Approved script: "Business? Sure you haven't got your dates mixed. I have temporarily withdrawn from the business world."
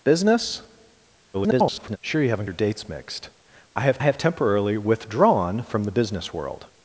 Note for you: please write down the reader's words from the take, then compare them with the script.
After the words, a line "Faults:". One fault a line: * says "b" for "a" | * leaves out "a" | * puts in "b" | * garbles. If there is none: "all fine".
"Business? [garbled] Sure you haven't your dates mixed. I have have temporarily withdrawn from the business world."
Faults:
* garbles
* leaves out "got"
* puts in "have"